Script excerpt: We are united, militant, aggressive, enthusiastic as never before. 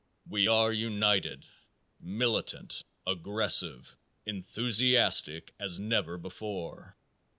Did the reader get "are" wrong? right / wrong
right